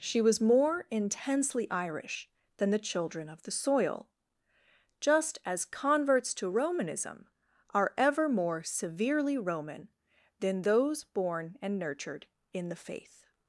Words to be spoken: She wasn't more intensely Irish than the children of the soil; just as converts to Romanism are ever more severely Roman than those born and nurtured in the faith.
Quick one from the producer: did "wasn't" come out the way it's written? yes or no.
no